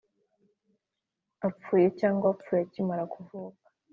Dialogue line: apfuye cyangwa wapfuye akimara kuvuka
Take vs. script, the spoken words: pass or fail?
pass